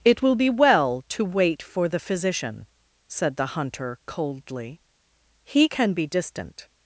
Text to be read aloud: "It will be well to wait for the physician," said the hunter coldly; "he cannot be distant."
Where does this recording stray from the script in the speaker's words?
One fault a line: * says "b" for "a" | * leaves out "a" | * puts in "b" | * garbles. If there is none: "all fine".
* says "can" for "cannot"